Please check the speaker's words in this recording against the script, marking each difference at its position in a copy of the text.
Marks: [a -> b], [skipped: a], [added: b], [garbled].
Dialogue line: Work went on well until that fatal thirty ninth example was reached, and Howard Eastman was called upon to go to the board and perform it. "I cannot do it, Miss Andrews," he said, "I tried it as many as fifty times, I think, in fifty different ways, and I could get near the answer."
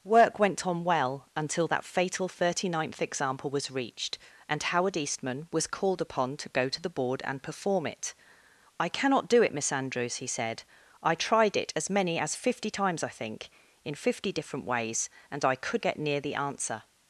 Work went on well until that fatal thirty ninth example was reached, and Howard Eastman was called upon to go to the board and perform it. "I cannot do it, Miss Andrews," he said, "I tried it as many as fifty times, I think, in fifty different ways, and I could get near the answer."